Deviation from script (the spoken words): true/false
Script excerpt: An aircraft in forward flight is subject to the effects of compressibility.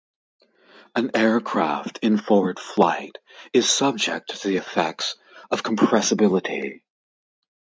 false